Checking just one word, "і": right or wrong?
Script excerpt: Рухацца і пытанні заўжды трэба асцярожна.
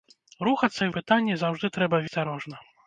right